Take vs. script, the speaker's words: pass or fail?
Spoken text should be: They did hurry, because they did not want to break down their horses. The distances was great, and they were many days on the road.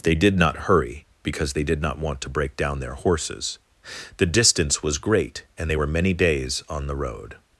fail